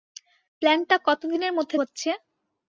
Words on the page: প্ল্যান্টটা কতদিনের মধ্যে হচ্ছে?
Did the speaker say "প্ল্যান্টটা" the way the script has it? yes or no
yes